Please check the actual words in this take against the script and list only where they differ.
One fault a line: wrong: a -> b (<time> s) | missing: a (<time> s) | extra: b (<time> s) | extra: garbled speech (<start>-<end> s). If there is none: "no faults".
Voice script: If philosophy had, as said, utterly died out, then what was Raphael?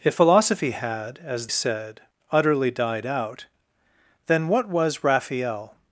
no faults